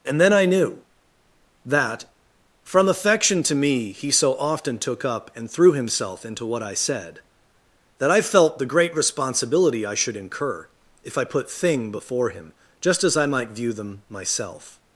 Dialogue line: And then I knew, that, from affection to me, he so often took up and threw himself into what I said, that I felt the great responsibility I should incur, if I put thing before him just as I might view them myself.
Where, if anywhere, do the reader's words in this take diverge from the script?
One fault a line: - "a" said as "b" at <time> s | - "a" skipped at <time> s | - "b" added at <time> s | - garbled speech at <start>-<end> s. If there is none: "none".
none